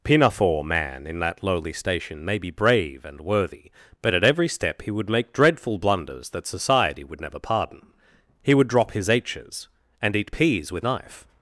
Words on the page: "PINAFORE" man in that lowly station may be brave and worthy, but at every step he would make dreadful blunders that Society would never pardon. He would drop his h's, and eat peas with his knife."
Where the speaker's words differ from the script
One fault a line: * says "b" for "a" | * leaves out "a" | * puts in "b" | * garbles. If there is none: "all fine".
* leaves out "his"